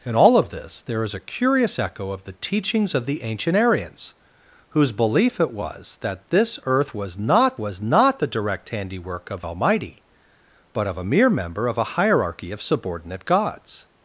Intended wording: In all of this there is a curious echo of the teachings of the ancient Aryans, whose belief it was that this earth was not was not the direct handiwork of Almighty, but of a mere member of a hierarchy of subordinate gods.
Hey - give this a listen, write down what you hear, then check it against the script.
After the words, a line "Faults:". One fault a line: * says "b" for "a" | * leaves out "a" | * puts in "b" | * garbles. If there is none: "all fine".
In all of this there is a curious echo of the teachings of the ancient Aryans, whose belief it was that this earth was not was not the direct handiwork of Almighty, but of a mere member of a hierarchy of subordinate gods.
Faults:
all fine